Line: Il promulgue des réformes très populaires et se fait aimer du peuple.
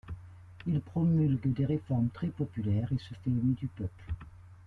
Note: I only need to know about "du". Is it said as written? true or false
true